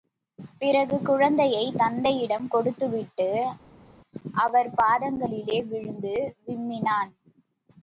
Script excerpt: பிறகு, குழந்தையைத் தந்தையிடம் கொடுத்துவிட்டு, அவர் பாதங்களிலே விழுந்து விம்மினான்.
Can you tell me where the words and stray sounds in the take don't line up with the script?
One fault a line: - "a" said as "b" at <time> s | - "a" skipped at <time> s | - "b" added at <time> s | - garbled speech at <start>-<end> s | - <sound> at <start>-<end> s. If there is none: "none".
none